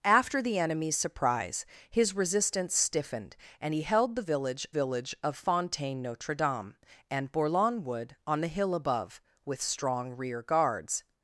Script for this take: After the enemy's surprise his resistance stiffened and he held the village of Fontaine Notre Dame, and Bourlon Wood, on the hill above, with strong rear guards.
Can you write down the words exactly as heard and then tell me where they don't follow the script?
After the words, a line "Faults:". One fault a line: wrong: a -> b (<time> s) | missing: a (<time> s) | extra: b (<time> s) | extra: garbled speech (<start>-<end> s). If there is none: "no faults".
After the enemy's surprise his resistance stiffened and he held the village village of Fontaine Notre Dame, and Bourlon Wood, on the hill above, with strong rear guards.
Faults:
extra: village (4.7 s)